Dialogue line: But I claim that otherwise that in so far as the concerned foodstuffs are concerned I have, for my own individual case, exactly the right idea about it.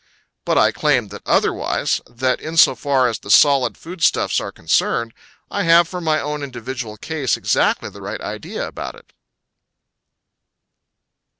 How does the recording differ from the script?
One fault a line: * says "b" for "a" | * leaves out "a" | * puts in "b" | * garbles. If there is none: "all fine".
* says "solid" for "concerned"